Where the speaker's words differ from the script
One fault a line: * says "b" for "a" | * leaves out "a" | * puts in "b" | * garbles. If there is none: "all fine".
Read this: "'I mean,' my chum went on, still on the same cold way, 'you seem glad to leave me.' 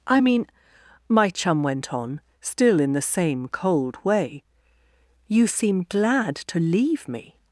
* says "in" for "on"